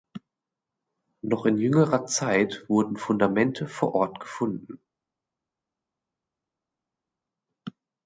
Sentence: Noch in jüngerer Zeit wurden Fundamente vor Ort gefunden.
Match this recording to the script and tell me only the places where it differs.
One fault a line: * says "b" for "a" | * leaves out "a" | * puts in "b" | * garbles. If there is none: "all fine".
all fine